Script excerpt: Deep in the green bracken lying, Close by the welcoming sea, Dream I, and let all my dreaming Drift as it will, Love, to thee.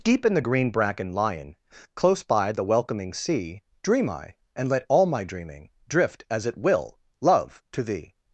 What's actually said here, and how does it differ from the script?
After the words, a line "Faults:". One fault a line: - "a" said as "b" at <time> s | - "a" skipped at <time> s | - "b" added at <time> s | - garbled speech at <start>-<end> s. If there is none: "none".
Deep in the green bracken lying, Close by the welcoming sea, Dream I, and let all my dreaming Drift as it will, Love, to thee.
Faults:
none